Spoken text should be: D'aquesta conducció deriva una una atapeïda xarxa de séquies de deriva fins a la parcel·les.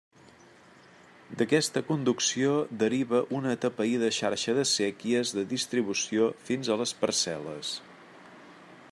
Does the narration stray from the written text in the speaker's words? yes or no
yes